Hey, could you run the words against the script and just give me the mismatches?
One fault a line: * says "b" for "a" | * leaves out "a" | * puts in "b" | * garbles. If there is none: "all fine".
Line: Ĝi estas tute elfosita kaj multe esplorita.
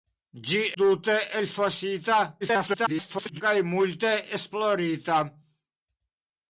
* leaves out "estas"
* garbles